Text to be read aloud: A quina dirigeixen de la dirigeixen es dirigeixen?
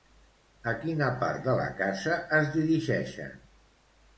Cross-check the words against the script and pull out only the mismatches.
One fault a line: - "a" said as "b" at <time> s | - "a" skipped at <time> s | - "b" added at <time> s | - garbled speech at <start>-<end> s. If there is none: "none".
- "dirigeixen" said as "part" at 1.2 s
- "dirigeixen" said as "casa" at 1.8 s